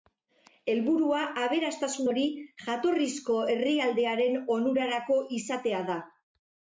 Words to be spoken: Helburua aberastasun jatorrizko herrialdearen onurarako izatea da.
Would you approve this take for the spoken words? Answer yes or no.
no